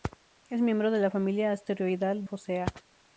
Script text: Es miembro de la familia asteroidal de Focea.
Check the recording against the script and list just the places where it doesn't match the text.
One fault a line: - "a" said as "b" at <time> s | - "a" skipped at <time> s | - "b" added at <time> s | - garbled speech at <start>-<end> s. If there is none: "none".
- "de" skipped at 2.2 s